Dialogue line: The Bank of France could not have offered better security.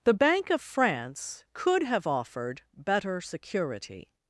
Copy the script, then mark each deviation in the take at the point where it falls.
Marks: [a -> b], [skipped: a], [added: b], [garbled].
The Bank of France could [skipped: not] have offered better security.